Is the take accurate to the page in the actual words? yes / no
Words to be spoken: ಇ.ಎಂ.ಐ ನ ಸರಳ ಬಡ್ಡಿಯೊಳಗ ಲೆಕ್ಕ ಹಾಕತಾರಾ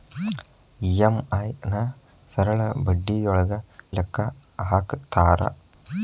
yes